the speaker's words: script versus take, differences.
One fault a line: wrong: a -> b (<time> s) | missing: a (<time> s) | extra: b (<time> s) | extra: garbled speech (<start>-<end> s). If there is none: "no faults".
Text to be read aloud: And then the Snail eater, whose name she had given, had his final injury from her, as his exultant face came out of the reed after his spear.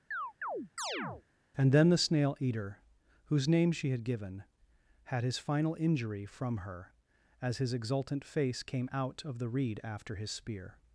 no faults